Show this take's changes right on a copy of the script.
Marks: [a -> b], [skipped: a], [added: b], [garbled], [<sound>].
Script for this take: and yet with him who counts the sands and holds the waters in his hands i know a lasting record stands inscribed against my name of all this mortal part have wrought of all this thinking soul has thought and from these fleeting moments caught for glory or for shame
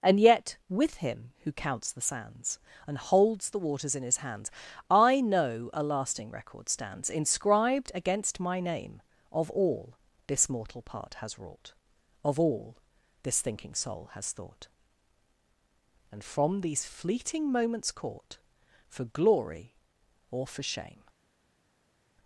and yet with him who counts the sands and holds the waters in his hands i know a lasting record stands inscribed against my name of all this mortal part [have -> has] wrought of all this thinking soul has thought and from these fleeting moments caught for glory or for shame